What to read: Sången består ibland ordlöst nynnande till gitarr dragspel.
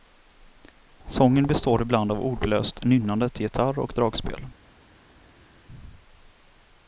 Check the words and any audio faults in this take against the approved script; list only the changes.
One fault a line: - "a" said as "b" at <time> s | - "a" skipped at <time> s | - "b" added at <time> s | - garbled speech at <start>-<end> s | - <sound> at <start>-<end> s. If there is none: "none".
- "av" added at 2.1 s
- "och" added at 3.8 s